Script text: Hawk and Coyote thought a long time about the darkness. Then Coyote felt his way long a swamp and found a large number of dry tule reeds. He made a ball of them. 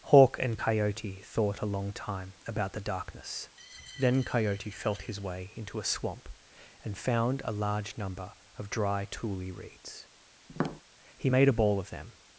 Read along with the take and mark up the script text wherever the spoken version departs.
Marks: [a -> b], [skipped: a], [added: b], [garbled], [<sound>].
Hawk and Coyote thought a long time about the darkness. Then Coyote felt his way [long -> into] a swamp and found a large number of dry tule reeds. [tap] He made a ball of them.